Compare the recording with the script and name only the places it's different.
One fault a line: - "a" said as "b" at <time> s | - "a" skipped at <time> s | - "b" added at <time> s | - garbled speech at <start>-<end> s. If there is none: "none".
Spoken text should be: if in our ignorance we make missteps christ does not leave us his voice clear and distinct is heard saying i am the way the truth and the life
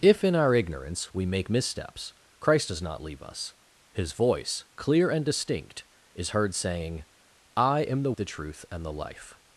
- "way" skipped at 8.1 s